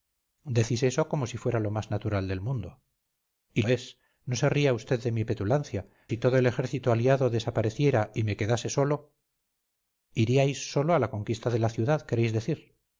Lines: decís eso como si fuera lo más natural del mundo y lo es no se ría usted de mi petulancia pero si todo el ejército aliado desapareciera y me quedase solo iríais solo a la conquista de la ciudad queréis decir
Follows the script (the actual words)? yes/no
no